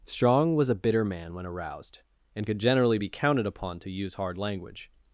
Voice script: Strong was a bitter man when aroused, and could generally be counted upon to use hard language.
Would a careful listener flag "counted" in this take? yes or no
no